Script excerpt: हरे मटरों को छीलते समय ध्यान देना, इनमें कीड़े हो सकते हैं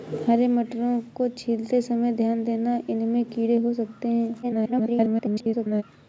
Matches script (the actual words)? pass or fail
fail